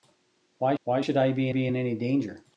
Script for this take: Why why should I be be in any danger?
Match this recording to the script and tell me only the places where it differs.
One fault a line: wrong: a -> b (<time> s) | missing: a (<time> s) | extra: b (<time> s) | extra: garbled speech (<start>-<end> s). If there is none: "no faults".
no faults